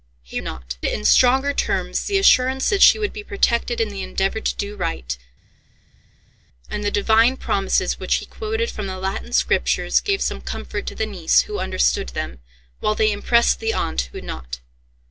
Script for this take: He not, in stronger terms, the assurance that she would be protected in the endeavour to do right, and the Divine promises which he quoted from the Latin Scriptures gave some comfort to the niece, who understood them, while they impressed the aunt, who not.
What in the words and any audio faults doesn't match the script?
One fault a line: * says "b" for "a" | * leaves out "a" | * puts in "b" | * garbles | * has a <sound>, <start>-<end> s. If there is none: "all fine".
all fine